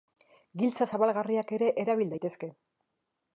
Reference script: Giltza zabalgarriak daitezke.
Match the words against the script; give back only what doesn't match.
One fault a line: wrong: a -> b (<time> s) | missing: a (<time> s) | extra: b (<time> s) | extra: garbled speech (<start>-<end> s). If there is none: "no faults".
extra: ere erabil (1.6 s)